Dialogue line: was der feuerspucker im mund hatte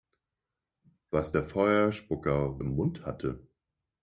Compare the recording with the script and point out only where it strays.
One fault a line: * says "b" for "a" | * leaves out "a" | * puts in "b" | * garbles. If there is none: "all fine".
all fine